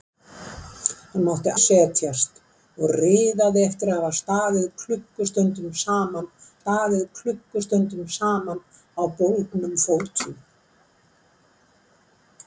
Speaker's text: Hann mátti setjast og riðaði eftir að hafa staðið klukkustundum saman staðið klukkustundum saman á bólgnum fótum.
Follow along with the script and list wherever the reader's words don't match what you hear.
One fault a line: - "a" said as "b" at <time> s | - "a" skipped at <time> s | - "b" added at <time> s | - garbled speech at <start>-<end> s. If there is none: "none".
none